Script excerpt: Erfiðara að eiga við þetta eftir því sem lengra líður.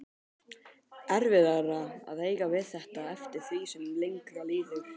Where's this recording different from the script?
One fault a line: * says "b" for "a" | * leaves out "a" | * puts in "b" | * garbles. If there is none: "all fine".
all fine